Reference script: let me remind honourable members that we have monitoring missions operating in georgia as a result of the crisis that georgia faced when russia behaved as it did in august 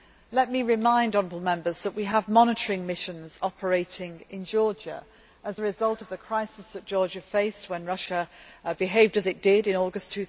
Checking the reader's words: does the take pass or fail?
pass